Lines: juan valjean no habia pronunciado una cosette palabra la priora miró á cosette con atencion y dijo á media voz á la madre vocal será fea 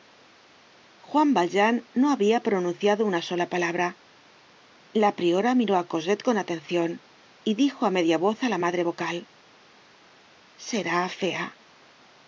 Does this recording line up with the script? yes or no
no